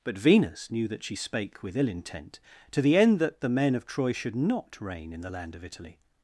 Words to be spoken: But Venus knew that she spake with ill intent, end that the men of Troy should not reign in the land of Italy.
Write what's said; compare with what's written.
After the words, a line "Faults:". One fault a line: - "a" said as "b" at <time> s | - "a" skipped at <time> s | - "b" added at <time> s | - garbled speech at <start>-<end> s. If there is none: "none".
But Venus knew that she spake with ill intent, to the end that the men of Troy should not reign in the land of Italy.
Faults:
- "to the" added at 2.7 s